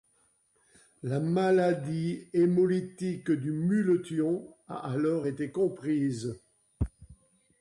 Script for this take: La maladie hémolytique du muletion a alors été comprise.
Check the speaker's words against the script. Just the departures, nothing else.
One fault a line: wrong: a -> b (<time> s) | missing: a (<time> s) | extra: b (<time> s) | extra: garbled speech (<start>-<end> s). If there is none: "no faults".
no faults